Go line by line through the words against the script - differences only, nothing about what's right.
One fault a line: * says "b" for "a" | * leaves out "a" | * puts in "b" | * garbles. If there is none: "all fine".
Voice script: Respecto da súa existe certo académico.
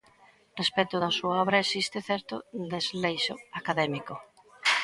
* puts in "obra"
* puts in "desleixo"